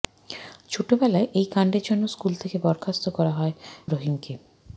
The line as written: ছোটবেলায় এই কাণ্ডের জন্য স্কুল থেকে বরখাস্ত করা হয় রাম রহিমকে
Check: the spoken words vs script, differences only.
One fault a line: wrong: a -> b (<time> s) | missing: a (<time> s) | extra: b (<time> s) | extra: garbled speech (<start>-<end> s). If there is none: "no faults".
missing: রাম (3.5 s)